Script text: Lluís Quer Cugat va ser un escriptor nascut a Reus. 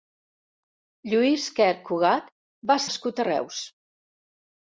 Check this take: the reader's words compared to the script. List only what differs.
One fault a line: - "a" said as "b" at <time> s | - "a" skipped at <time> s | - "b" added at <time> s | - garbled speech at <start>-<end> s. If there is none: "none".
- "ser un escriptor" skipped at 2.8 s